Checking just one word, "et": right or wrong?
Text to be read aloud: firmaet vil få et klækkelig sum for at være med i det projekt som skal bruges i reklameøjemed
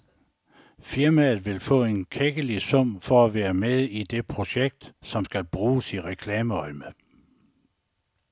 wrong